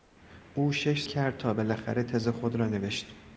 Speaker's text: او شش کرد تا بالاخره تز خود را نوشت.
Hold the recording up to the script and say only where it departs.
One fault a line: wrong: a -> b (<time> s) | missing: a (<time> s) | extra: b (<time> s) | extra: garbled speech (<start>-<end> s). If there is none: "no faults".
no faults